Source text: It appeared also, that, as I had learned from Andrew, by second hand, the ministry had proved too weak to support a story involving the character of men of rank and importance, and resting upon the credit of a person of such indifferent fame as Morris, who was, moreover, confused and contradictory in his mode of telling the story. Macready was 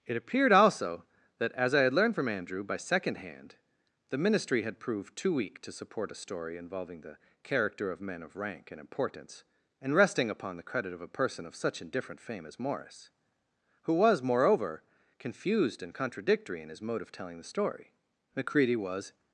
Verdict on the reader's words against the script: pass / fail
pass